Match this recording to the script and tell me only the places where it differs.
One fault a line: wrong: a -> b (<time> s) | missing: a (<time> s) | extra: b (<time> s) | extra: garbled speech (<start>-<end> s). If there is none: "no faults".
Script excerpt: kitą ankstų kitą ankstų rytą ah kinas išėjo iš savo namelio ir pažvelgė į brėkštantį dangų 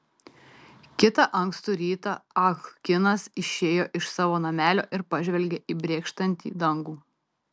missing: kitą ankstų (1.8 s)